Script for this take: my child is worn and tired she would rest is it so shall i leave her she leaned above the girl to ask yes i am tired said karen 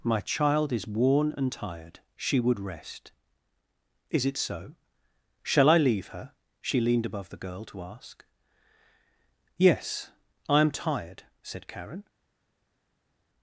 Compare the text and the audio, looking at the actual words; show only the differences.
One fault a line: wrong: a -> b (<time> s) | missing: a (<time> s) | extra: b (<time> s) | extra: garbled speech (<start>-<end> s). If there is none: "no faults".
no faults